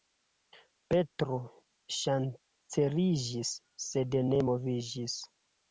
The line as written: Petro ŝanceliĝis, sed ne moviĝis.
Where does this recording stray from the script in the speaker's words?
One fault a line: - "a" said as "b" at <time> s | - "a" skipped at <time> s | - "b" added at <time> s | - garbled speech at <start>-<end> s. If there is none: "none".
none